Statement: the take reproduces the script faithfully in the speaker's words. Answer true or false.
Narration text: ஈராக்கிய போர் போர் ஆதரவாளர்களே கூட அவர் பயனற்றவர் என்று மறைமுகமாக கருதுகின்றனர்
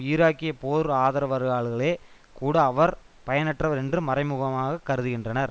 false